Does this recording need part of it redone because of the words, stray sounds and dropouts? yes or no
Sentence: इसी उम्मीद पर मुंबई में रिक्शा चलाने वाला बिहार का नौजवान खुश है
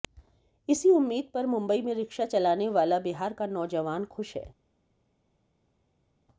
no